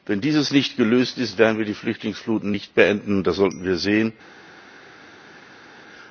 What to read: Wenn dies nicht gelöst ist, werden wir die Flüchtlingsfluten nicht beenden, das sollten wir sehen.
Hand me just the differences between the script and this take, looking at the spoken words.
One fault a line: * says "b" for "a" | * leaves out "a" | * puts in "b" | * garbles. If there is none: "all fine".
all fine